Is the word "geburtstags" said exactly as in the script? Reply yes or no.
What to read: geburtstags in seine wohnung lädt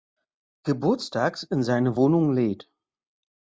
yes